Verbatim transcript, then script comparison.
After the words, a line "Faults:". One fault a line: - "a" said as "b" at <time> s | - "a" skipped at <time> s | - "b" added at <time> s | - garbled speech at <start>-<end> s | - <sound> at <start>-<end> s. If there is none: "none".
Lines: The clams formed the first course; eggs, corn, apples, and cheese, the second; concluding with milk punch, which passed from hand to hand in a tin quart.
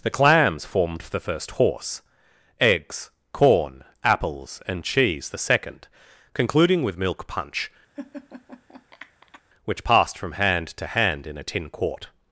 The clams formed the first horse; eggs, corn, apples, and cheese, the second; concluding with milk punch, which passed from hand to hand in a tin quart.
Faults:
- "course" said as "horse" at 1.5 s
- laugh at 8.0-9.4 s